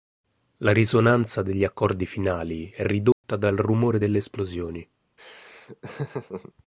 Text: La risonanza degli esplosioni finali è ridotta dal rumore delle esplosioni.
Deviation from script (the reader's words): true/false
true